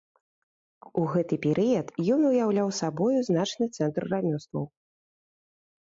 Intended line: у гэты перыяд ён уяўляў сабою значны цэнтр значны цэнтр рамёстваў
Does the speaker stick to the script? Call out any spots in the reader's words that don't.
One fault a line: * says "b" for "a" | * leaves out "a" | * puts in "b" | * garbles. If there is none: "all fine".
* leaves out "значны цэнтр"